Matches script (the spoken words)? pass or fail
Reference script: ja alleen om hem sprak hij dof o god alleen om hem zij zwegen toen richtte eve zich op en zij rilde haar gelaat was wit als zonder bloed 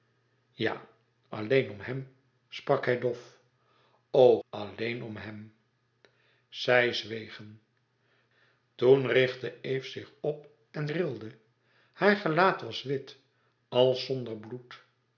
fail